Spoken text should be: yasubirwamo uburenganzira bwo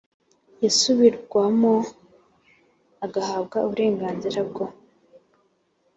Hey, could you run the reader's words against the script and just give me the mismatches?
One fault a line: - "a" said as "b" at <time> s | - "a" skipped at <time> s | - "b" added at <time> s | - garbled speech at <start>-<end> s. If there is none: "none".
- "agahabwa" added at 3.0 s